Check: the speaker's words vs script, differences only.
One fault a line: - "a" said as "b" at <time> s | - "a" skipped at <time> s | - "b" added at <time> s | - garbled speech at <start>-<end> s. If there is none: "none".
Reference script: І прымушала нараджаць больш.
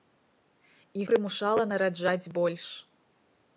none